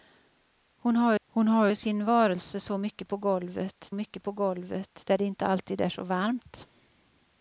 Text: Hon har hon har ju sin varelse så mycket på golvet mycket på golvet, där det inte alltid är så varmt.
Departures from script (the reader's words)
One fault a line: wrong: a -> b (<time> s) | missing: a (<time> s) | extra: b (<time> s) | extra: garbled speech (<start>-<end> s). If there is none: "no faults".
no faults